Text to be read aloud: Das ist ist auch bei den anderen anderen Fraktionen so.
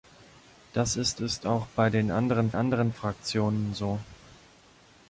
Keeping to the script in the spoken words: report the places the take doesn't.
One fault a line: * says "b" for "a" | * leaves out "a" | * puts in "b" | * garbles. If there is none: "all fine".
all fine